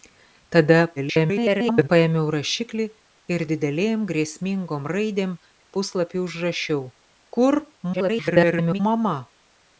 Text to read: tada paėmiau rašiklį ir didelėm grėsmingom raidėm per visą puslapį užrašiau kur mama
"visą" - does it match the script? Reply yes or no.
no